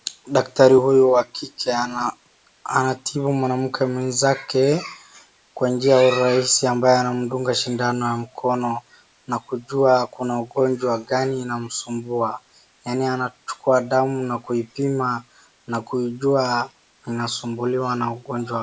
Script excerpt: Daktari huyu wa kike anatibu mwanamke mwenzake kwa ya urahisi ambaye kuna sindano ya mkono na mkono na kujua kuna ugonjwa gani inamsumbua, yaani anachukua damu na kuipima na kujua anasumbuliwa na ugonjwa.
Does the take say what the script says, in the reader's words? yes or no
no